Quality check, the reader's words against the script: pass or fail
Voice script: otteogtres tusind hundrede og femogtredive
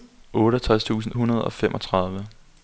pass